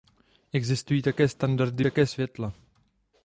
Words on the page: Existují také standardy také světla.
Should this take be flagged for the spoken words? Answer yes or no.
no